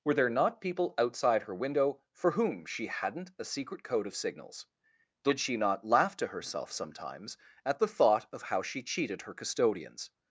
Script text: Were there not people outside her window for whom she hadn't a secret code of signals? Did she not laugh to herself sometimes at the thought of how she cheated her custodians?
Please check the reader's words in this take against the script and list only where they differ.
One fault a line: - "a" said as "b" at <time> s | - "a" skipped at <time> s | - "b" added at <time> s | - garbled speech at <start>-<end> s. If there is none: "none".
none